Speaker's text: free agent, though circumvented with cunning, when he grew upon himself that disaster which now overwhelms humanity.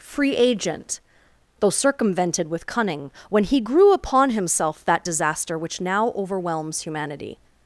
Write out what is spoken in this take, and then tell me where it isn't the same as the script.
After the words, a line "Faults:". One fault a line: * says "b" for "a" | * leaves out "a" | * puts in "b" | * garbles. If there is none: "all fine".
free agent, though circumvented with cunning, when he grew upon himself that disaster which now overwhelms humanity.
Faults:
all fine